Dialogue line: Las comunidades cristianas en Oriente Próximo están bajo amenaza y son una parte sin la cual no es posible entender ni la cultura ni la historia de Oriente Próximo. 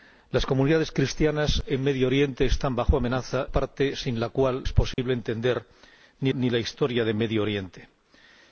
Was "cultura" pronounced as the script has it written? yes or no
no